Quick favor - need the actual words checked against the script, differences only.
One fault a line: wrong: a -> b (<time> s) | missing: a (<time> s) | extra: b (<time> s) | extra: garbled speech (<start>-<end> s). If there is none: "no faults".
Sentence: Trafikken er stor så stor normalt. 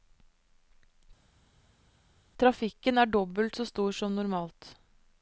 wrong: stor -> dobbelt (3.0 s)
extra: som (3.9 s)